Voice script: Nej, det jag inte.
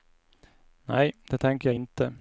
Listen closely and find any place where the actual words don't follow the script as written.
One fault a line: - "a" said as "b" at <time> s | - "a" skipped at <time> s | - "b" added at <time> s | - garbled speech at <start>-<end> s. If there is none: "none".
- "tänker" added at 1.4 s